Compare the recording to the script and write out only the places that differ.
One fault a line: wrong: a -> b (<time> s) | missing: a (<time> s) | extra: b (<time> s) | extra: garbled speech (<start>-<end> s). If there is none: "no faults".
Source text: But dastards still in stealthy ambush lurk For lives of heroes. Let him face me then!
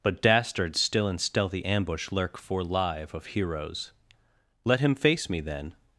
wrong: lives -> live (2.6 s)